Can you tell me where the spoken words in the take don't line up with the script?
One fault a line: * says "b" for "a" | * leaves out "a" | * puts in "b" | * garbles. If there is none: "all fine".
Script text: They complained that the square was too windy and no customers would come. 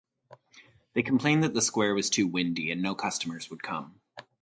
all fine